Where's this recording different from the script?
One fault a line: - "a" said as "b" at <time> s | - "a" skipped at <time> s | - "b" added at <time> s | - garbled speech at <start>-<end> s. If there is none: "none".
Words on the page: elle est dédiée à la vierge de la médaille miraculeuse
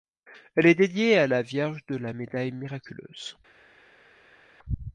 none